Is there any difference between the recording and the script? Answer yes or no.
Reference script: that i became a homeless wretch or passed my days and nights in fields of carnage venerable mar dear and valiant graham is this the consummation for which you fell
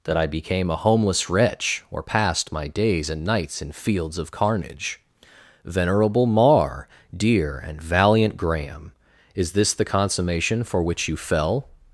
no